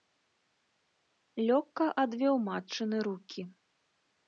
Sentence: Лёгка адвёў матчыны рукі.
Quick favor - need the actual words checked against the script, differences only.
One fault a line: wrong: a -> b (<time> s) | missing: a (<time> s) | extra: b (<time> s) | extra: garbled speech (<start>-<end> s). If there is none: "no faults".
no faults